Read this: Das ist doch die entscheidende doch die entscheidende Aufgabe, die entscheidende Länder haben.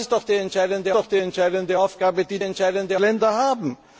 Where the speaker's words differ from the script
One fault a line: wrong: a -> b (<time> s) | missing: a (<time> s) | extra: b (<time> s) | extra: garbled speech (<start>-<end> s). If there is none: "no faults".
no faults